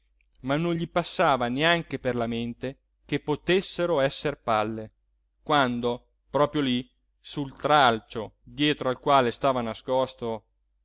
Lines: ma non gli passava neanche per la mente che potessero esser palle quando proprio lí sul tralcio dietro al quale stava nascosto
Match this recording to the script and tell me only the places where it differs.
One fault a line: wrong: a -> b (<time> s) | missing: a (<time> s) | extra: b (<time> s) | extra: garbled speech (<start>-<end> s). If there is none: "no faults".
no faults